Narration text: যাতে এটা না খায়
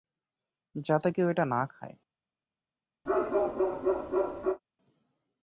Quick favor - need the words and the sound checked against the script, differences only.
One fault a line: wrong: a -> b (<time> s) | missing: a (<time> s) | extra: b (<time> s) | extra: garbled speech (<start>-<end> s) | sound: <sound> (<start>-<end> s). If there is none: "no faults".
extra: কেউ (1.1 s)
sound: bark (3.1-4.6 s)